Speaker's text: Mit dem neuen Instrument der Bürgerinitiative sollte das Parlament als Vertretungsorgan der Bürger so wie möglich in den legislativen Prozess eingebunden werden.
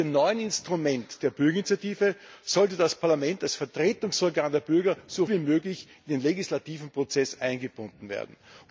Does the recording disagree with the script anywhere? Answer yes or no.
no